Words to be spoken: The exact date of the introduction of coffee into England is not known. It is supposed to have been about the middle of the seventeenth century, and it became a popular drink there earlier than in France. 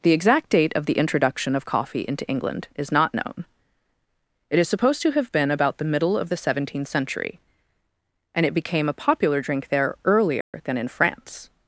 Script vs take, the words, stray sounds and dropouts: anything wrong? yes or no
yes